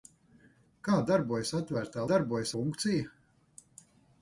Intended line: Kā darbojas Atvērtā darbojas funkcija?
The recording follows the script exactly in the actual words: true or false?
true